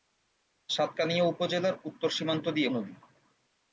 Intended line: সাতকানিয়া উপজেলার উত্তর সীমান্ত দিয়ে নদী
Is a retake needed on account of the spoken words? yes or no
no